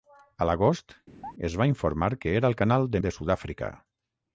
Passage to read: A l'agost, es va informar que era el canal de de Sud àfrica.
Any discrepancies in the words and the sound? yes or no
yes